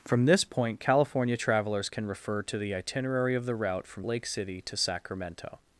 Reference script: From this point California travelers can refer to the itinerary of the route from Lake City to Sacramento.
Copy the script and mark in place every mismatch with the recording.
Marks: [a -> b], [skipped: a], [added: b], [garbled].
From this point California travelers can refer to the itinerary of the route from Lake City to Sacramento.